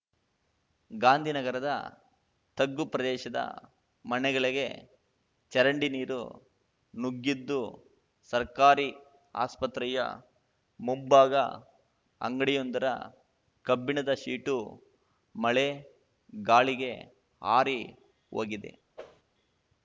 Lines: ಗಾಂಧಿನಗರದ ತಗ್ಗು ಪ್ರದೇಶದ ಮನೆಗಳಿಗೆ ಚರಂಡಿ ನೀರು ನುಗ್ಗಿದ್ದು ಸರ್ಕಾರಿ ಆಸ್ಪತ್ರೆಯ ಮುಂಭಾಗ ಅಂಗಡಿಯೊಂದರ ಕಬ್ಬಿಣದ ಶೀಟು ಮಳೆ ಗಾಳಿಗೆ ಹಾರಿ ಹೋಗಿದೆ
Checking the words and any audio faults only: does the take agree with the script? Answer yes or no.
no